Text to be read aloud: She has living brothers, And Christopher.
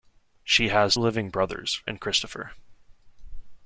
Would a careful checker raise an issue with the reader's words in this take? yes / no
no